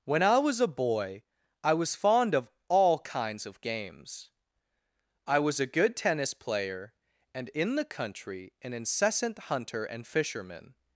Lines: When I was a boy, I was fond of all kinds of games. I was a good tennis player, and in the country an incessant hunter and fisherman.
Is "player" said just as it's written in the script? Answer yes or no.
yes